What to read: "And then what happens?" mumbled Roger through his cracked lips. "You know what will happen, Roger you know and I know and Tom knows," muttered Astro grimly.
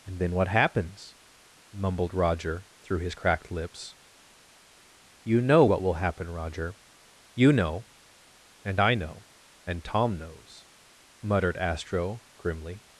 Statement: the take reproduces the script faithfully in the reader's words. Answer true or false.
true